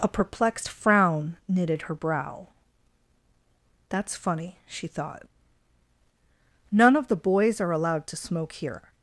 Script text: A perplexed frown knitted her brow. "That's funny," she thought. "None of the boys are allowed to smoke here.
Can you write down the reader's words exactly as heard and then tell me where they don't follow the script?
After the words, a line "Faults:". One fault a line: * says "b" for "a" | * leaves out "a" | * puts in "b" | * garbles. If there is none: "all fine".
A perplexed frown knitted her brow. "That's funny," she thought. "None of the boys are allowed to smoke here.
Faults:
all fine